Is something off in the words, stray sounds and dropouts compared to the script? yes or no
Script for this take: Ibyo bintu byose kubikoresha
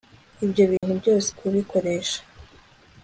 yes